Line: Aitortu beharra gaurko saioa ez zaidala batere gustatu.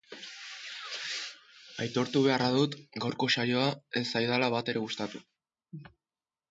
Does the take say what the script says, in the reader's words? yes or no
no